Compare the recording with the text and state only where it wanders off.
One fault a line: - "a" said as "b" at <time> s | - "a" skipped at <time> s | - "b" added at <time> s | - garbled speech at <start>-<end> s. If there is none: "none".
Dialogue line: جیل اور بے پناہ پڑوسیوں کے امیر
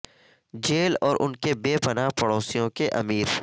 - "ان کے" added at 1.2 s